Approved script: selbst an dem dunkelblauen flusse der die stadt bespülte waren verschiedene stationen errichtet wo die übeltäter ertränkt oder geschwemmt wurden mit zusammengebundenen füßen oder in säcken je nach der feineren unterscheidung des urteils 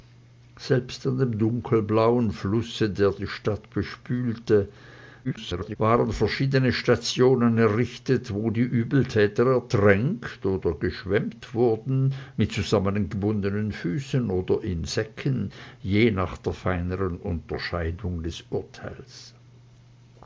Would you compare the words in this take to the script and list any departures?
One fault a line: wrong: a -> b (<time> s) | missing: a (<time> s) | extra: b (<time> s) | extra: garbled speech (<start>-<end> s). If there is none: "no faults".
extra: garbled speech (5.2-5.8 s)